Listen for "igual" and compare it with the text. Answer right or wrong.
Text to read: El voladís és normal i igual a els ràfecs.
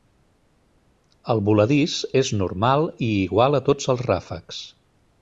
right